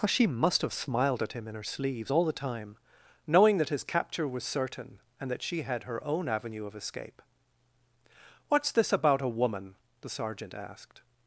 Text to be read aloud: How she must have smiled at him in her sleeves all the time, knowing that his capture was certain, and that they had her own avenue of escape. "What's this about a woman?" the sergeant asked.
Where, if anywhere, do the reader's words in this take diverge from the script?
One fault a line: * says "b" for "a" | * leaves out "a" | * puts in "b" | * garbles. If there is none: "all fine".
* says "she" for "they"